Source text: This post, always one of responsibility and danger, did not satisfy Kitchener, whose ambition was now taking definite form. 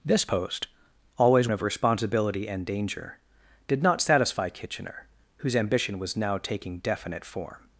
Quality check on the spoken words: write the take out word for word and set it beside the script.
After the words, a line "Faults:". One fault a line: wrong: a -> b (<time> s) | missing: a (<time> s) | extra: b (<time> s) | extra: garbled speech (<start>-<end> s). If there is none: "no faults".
This post, always of responsibility and danger, did not satisfy Kitchener, whose ambition was now taking definite form.
Faults:
missing: one (1.5 s)